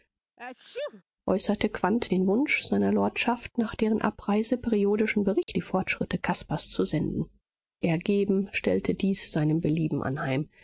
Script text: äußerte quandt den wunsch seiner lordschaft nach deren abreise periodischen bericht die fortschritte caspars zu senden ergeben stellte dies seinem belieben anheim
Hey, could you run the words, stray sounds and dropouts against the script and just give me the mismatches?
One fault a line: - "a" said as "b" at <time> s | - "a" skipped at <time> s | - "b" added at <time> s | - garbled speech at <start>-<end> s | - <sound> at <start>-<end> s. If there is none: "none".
- sneeze at 0.4-1.0 s
- dropout at 5.4-5.5 s